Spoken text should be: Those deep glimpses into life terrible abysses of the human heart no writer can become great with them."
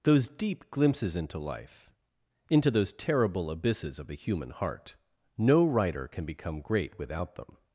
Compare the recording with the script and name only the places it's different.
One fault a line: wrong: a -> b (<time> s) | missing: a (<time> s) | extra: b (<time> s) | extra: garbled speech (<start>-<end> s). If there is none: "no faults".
extra: into those (2.5 s)
wrong: with -> without (7.0 s)